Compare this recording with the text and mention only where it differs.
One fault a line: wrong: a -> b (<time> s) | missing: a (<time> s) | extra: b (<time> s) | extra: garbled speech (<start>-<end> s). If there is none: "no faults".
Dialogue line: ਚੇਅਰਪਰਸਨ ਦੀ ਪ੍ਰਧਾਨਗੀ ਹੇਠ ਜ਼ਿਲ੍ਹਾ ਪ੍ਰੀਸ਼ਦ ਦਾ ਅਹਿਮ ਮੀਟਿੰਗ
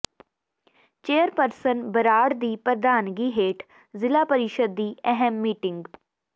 extra: ਬਰਾੜ (1.9 s)
wrong: ਦਾ -> ਦੀ (4.8 s)